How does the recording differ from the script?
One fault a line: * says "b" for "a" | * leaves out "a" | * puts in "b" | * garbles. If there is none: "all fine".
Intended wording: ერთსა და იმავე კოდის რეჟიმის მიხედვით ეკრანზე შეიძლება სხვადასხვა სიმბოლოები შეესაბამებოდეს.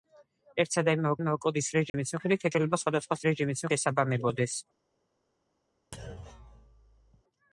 * puts in "იმავე"
* leaves out "ეკრანზე"
* says "რეჟიმის" for "სიმბოლოები"